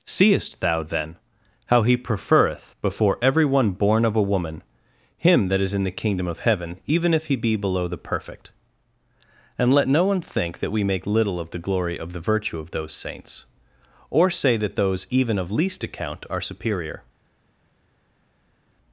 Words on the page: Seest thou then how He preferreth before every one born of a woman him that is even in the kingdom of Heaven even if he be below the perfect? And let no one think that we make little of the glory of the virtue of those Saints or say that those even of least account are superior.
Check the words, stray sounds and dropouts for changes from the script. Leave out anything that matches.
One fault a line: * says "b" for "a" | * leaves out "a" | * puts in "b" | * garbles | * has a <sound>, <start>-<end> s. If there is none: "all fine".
* leaves out "even"